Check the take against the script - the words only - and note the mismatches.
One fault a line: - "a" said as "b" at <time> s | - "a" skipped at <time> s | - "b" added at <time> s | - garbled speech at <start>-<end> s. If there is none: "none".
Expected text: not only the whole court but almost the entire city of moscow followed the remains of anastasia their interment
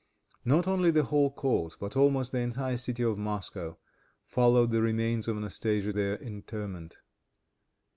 none